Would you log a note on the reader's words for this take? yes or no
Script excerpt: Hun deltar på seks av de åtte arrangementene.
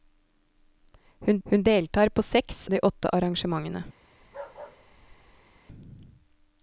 yes